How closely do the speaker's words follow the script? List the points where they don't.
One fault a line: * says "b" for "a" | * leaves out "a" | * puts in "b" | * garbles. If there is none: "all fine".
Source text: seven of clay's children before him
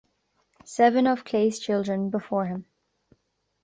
all fine